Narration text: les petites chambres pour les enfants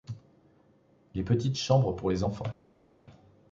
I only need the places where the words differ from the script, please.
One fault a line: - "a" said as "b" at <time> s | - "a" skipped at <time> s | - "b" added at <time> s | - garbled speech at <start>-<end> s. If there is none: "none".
none